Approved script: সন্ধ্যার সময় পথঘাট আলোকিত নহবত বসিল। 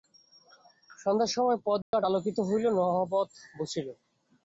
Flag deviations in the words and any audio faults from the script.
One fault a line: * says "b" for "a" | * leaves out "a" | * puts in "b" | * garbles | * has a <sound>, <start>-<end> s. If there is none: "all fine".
* has a dropout, 1.8-1.9 s
* puts in "হইল"